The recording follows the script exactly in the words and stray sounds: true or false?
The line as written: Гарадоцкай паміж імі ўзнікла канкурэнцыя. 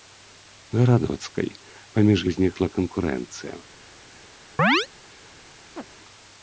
false